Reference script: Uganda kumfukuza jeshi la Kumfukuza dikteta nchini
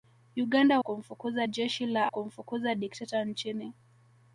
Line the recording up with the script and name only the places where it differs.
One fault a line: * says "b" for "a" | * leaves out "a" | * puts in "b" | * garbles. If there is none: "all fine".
all fine